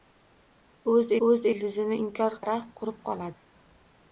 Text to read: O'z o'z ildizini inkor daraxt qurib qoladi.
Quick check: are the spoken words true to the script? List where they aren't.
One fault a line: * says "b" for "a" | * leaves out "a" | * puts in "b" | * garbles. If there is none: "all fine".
all fine